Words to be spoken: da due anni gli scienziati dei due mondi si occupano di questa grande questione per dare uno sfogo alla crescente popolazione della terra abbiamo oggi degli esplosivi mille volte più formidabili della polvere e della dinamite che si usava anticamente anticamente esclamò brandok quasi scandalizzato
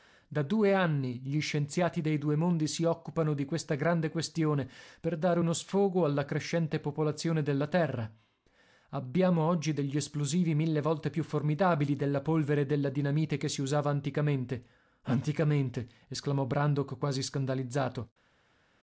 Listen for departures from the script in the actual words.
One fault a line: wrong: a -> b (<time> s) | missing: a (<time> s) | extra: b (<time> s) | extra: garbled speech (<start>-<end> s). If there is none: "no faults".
no faults